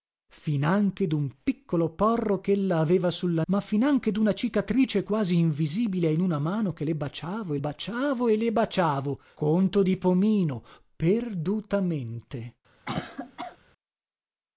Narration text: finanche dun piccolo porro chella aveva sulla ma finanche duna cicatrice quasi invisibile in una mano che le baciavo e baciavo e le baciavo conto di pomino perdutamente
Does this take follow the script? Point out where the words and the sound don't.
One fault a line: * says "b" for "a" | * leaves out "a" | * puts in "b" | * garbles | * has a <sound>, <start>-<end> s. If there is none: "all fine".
* has a cough, 12.8-13.6 s